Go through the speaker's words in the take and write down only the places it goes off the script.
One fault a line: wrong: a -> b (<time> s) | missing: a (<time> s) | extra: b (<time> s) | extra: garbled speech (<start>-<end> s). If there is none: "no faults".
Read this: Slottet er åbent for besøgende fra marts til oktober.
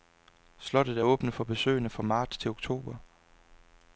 no faults